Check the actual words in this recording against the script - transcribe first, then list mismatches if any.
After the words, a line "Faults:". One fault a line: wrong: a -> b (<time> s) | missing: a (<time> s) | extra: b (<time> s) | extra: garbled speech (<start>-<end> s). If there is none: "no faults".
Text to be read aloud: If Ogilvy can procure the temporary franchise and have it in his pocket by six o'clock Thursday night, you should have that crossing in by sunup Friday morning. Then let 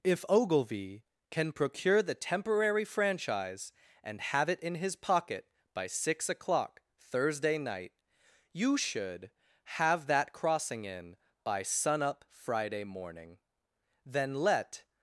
If Ogilvy can procure the temporary franchise and have it in his pocket by six o'clock Thursday night, you should have that crossing in by sunup Friday morning. Then let
Faults:
no faults